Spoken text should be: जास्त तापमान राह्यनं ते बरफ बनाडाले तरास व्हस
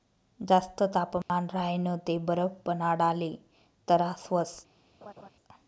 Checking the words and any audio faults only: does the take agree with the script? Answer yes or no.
no